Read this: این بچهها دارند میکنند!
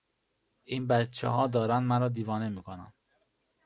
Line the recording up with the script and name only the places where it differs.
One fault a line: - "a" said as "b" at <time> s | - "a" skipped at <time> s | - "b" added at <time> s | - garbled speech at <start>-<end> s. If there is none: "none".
- "مرا دیوانه" added at 1.8 s